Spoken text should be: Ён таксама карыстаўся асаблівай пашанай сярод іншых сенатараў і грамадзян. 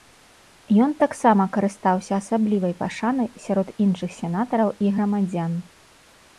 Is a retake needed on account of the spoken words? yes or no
no